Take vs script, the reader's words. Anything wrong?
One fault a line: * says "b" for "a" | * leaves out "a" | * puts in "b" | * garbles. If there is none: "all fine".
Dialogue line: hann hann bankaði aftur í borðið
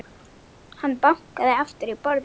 * leaves out "hann"